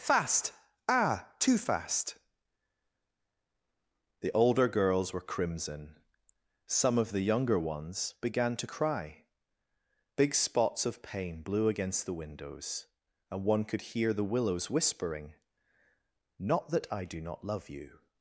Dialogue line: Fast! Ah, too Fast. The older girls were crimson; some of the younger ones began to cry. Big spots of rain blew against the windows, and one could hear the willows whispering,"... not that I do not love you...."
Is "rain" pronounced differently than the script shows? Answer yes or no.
yes